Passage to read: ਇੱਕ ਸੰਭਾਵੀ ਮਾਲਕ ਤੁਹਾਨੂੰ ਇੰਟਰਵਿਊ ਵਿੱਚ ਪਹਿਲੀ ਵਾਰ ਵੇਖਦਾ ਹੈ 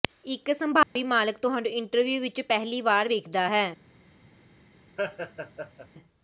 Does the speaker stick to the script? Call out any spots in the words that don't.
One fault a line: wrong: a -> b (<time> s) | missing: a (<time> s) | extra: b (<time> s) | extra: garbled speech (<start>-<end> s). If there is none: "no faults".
no faults